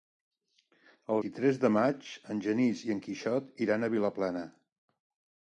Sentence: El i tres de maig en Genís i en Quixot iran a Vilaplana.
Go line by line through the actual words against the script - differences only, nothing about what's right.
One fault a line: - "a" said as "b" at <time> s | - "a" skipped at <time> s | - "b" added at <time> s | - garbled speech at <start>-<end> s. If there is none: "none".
none